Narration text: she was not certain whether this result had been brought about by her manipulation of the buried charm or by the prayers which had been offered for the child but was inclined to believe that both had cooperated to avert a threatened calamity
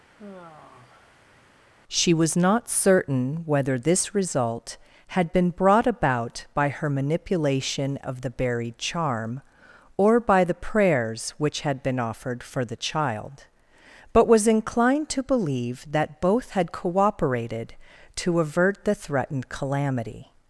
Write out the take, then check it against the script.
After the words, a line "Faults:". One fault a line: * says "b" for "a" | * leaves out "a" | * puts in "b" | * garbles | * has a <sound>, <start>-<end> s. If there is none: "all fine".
she was not certain whether this result had been brought about by her manipulation of the buried charm or by the prayers which had been offered for the child but was inclined to believe that both had cooperated to avert the threatened calamity
Faults:
* has a sigh, 0.2-1.7 s
* says "the" for "a"